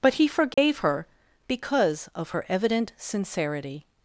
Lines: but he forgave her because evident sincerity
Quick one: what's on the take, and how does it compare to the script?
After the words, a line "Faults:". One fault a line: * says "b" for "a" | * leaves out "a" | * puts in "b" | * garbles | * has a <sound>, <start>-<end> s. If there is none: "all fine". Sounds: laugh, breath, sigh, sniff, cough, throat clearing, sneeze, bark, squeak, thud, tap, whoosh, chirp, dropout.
but he forgave her because of her evident sincerity
Faults:
* has a dropout, 0.5-0.6 s
* puts in "of her"